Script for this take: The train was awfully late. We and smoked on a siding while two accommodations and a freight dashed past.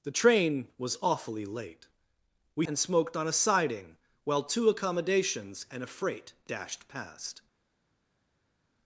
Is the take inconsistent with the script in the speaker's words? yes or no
no